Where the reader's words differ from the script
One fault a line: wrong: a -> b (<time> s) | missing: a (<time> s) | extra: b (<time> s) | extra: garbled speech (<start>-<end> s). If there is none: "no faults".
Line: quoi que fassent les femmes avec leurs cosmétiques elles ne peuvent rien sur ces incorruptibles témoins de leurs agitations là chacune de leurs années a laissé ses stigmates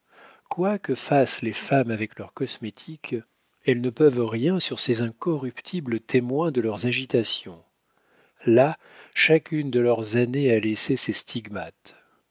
no faults